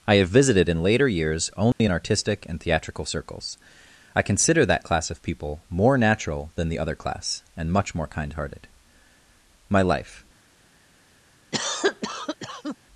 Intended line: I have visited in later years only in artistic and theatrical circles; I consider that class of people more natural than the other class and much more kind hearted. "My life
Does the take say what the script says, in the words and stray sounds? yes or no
no